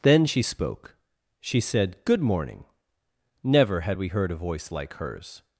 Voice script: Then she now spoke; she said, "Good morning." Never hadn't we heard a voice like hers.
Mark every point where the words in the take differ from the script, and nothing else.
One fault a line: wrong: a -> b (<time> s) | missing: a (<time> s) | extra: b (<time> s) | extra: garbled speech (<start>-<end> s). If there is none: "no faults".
missing: now (0.4 s)
wrong: hadn't -> had (3.8 s)